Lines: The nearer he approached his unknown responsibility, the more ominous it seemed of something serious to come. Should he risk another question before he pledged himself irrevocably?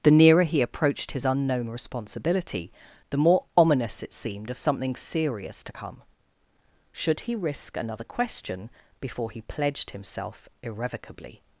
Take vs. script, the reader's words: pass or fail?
pass